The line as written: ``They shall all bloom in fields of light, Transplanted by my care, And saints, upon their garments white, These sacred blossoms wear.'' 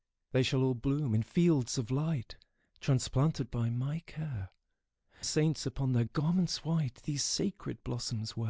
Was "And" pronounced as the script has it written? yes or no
no